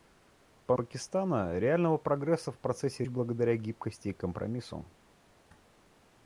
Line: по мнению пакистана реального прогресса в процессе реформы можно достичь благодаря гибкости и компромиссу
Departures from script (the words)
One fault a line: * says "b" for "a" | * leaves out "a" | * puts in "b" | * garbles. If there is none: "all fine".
* leaves out "мнению"
* leaves out "реформы можно достичь"